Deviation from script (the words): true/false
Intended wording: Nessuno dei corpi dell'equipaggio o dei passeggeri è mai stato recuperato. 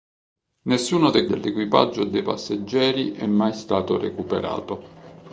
true